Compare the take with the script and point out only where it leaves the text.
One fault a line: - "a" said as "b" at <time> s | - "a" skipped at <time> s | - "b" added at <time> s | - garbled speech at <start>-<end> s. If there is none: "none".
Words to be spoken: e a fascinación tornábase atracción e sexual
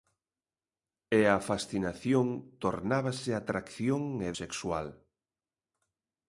none